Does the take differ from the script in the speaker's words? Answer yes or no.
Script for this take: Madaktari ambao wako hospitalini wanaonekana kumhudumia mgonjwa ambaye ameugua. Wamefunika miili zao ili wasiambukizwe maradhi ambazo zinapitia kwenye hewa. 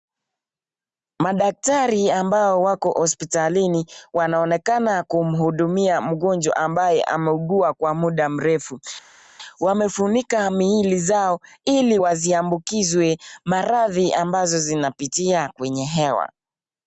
yes